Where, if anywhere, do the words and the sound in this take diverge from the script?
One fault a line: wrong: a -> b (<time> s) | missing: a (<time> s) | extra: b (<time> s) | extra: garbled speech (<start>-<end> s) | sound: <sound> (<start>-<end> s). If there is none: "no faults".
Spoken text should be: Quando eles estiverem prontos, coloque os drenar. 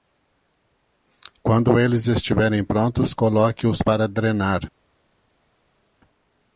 extra: para (3.8 s)